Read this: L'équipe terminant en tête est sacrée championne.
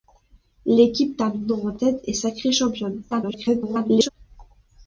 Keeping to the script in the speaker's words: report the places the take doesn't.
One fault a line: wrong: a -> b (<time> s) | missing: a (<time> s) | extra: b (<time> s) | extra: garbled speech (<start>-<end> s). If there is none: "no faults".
extra: garbled speech (3.1-4.1 s)